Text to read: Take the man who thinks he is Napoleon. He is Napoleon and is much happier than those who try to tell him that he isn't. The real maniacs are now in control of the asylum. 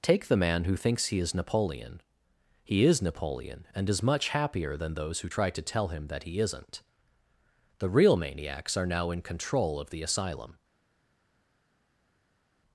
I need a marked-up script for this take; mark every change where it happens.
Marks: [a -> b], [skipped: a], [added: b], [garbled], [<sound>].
Take the man who thinks he is Napoleon. He is Napoleon and is much happier than those who try to tell him that he isn't. The real maniacs are now in control of the asylum.